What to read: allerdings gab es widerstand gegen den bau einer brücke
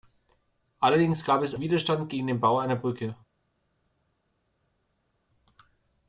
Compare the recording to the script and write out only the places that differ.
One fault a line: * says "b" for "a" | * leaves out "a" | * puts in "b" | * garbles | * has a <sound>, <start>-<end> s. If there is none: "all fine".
all fine